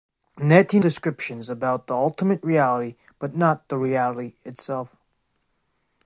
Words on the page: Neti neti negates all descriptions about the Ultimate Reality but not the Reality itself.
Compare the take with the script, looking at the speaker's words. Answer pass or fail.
fail